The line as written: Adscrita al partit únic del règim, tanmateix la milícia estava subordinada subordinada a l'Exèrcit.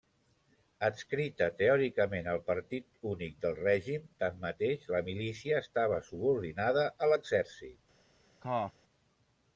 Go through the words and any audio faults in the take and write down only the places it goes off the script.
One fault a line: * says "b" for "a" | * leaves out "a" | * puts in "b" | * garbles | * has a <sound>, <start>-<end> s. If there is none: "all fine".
* puts in "teòricament"
* leaves out "subordinada"
* has a cough, 8.4-8.7 s